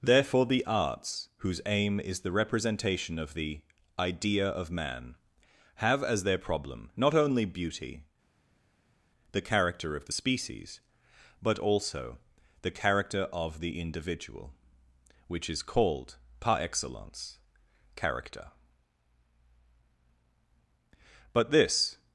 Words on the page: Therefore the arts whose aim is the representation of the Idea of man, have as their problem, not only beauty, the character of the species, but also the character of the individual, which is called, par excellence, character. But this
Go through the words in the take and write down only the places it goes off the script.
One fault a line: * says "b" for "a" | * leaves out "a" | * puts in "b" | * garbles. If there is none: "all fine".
all fine